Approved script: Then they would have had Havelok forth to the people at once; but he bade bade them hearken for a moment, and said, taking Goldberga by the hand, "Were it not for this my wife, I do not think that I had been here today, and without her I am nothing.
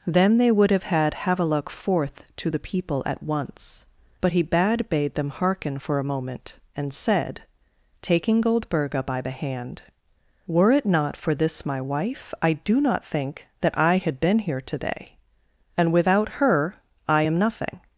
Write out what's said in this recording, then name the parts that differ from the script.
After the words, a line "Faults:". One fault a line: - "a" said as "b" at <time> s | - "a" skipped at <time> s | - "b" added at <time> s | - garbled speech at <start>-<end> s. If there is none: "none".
Then they would have had Havelok forth to the people at once; but he bade bade them hearken for a moment, and said, taking Goldberga by the hand, "Were it not for this my wife, I do not think that I had been here today, and without her I am nothing.
Faults:
none